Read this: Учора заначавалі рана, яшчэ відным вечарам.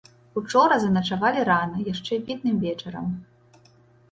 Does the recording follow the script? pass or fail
pass